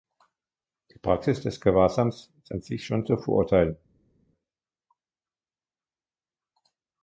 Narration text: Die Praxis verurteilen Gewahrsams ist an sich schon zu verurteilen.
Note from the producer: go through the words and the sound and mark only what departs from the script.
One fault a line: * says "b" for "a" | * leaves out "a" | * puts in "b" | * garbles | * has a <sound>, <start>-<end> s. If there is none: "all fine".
* says "des" for "verurteilen"